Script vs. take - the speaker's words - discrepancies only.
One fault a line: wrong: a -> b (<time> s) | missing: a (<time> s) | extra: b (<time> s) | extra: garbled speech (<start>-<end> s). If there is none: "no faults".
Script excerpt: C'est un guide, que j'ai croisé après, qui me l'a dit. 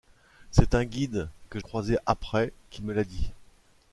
missing: j'ai (1.6 s)